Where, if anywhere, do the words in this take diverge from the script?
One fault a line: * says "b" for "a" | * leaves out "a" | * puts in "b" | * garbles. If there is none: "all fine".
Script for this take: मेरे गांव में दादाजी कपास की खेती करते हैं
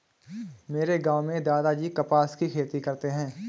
all fine